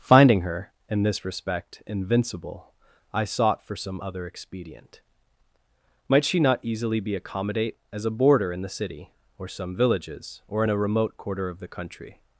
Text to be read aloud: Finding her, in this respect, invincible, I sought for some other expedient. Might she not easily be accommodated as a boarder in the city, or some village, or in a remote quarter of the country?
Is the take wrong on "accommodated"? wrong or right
wrong